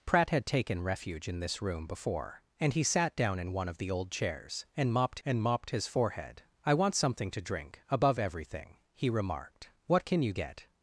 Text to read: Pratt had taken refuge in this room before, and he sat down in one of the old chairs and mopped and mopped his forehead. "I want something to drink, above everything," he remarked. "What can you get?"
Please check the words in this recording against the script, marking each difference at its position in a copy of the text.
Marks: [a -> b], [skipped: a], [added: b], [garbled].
Pratt had taken refuge in this room before, and he sat down in one of the old chairs and mopped and mopped his forehead. "I want something to drink, above everything," he remarked. "What can you get?"